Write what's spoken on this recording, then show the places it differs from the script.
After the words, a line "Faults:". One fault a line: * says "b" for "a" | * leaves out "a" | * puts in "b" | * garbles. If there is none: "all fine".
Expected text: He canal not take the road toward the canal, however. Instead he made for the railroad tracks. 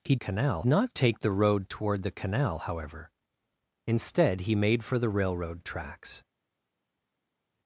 He canal not take the road toward the canal, however. Instead he made for the railroad tracks.
Faults:
all fine